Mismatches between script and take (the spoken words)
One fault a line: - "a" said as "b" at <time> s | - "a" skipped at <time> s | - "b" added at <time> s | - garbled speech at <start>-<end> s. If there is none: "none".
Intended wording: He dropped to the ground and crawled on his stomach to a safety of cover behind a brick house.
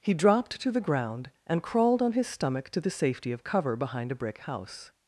- "a" said as "the" at 2.8 s